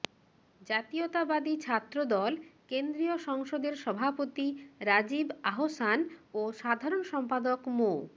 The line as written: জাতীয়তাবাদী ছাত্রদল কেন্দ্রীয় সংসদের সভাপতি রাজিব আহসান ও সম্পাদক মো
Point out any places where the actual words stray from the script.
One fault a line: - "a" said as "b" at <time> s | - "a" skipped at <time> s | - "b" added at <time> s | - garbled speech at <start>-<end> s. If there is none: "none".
- "সাধারণ" added at 6.5 s